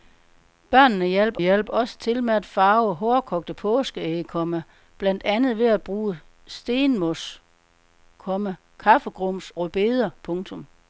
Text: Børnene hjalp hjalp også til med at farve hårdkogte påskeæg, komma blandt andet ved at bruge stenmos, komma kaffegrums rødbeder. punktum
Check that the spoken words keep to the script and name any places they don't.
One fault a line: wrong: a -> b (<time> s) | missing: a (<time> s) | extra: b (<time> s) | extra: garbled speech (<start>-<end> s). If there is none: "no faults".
no faults